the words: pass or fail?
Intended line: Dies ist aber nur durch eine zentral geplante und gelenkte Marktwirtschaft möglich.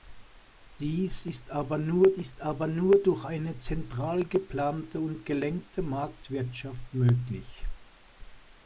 fail